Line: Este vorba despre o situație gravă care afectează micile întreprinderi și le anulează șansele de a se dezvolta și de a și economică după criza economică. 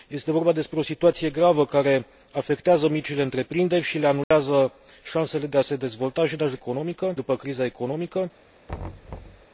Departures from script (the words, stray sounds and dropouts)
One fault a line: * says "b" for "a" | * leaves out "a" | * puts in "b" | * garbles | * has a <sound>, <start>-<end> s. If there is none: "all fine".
* has a dropout, 4.2-4.3 s
* has a thud, 8.7-9.5 s